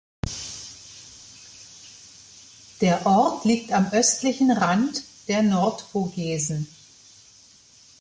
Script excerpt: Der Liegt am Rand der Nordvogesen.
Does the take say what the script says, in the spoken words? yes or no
no